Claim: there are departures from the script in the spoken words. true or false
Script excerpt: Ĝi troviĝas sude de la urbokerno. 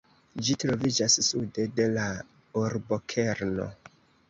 false